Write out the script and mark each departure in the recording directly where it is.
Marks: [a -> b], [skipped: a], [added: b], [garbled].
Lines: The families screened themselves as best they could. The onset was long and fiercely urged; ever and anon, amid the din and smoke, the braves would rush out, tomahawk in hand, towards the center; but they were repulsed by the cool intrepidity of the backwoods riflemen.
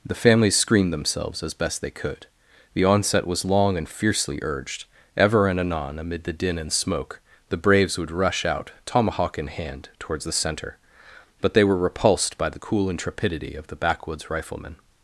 The families screened themselves as best they could. The onset was long and fiercely urged; ever and anon, amid the din and smoke, the braves would rush out, tomahawk in hand, towards the center; but they were repulsed by the cool intrepidity of the backwoods riflemen.